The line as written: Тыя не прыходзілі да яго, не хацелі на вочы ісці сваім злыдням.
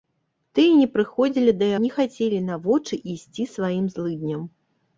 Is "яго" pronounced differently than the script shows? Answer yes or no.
yes